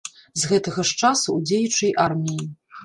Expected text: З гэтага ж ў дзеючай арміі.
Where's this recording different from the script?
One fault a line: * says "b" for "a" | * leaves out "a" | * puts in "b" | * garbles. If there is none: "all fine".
* puts in "часу"